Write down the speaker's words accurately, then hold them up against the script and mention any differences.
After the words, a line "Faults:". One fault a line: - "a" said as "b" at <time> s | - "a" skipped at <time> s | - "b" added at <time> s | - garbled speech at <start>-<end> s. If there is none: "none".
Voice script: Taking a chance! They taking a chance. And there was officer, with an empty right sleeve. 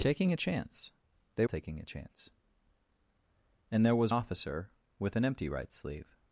Taking a chance! They taking a chance. And there was officer, with an empty right sleeve.
Faults:
none